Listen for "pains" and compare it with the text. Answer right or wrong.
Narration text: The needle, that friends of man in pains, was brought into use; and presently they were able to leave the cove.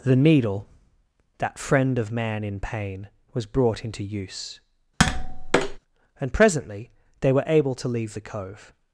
wrong